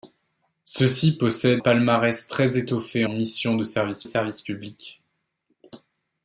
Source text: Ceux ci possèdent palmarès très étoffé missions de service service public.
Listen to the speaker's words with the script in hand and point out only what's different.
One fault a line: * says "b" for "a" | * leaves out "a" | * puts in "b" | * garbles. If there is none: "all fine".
all fine